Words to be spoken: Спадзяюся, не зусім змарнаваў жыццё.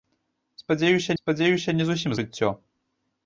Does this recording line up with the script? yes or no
no